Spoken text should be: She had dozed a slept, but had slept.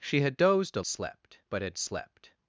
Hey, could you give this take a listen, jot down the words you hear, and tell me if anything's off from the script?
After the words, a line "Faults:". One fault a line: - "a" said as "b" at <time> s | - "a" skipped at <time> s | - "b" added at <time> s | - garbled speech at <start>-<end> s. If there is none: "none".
She had dozed a slept, but had slept.
Faults:
none